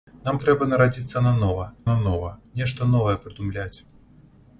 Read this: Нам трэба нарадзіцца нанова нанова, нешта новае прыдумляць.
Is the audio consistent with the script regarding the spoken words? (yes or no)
yes